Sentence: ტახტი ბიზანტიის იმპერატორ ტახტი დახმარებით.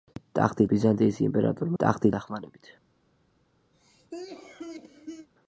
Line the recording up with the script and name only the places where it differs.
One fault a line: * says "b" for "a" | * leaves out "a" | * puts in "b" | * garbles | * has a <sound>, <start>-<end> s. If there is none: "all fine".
* has a cough, 3.7-5.3 s